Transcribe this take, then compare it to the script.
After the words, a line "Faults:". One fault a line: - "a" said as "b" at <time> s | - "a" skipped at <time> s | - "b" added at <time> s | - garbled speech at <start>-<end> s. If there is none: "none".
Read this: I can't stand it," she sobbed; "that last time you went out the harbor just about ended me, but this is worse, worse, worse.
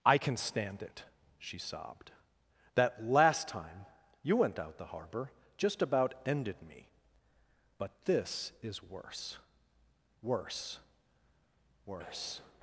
I can stand it," she sobbed; "that last time you went out the harbor just about ended me, but this is worse, worse, worse.
Faults:
- "can't" said as "can" at 0.2 s